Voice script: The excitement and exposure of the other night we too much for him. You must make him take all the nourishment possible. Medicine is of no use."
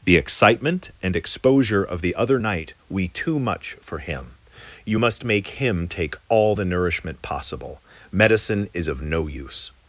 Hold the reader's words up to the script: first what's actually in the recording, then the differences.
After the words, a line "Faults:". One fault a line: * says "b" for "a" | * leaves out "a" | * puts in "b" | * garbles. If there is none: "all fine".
The excitement and exposure of the other night we too much for him. You must make him take all the nourishment possible. Medicine is of no use."
Faults:
all fine